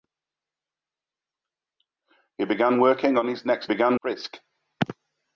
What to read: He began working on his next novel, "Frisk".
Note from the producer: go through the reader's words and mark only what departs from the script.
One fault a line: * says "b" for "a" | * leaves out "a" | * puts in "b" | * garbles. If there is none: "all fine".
* says "began" for "novel"